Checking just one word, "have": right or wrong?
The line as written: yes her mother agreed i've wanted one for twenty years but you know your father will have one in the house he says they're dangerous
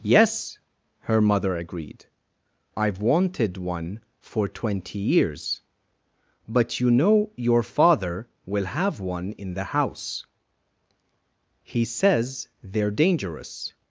right